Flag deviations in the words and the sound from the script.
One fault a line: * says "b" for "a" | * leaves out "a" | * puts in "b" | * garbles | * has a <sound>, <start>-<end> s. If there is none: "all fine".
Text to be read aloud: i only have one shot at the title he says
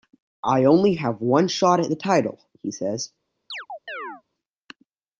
* has a chirp, 3.5-4.2 s